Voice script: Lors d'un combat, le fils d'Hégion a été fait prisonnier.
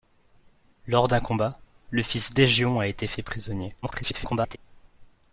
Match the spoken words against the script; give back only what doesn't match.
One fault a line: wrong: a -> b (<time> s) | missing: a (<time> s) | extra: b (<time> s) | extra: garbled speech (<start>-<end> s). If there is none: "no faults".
extra: garbled speech (3.8-4.6 s)